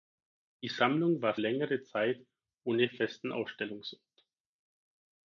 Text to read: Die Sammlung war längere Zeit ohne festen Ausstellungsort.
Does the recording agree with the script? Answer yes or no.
yes